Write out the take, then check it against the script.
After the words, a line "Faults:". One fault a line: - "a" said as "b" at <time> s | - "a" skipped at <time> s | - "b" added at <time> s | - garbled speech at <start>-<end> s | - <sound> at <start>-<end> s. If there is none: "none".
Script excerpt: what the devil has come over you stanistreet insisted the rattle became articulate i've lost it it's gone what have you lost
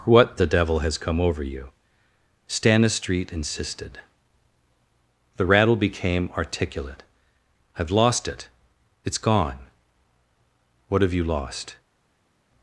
what the devil has come over you stanistreet insisted the rattle became articulate i've lost it it's gone what have you lost
Faults:
none